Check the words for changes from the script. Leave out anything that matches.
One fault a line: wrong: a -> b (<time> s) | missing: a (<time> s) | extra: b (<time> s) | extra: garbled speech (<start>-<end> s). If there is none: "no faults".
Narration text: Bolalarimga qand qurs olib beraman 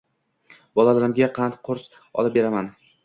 no faults